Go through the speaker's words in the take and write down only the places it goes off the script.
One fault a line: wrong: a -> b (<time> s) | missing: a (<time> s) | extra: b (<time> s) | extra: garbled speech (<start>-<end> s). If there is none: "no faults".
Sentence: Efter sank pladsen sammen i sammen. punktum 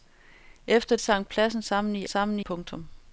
no faults